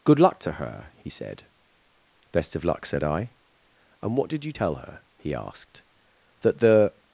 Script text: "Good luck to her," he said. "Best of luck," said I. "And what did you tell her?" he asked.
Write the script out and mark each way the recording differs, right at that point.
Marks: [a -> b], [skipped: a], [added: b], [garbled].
"Good luck to her," he said. "Best of luck," said I. "And what did you tell her?" he asked. [added: That the]